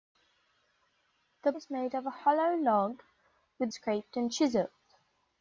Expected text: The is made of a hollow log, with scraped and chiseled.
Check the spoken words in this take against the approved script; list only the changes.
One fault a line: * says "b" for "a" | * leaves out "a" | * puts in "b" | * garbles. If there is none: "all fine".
all fine